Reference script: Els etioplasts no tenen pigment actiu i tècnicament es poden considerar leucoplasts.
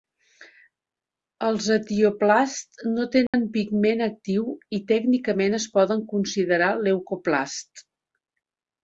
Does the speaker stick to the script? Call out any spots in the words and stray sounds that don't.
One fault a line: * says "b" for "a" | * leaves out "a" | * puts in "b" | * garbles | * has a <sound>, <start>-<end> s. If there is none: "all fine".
* has a dropout, 3.3-3.3 s